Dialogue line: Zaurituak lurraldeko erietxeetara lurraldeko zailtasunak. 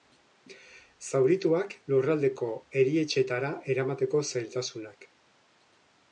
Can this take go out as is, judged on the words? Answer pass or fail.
fail